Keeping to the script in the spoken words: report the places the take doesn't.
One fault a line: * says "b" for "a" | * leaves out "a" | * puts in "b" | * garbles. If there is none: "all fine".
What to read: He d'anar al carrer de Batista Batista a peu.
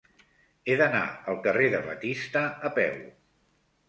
* leaves out "Batista"